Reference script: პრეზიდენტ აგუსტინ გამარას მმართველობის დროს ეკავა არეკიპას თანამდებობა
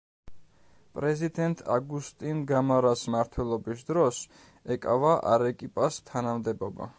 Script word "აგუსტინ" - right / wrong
right